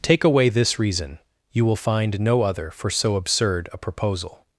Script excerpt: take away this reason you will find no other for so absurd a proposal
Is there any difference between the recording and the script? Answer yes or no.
no